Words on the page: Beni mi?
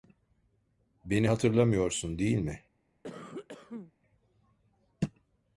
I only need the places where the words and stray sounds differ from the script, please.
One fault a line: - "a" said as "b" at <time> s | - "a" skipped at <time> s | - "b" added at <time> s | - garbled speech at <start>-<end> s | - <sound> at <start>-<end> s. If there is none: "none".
- "hatırlamıyorsun değil" added at 1.3 s
- cough at 3.0-3.9 s